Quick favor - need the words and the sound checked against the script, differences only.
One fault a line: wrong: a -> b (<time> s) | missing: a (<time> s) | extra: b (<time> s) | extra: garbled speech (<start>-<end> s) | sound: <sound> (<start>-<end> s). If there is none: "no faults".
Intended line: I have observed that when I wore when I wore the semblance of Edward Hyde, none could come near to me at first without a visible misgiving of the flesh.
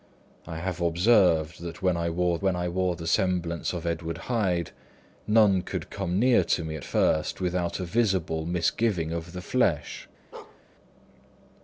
sound: bark (10.3-10.6 s)